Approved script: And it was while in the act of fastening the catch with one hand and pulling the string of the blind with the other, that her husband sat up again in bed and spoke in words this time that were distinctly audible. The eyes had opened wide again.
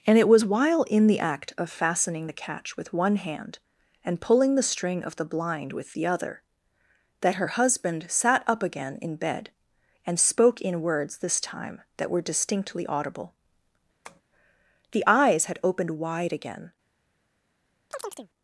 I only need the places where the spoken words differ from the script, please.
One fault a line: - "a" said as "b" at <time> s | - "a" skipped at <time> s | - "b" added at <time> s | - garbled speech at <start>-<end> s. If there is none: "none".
none